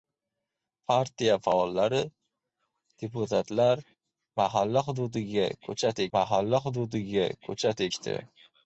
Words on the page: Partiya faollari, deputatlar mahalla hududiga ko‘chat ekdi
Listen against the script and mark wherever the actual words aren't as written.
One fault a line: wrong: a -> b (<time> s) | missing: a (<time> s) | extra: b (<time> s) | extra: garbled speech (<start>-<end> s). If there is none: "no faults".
extra: mahalla hududiga ko‘chat (6.2 s)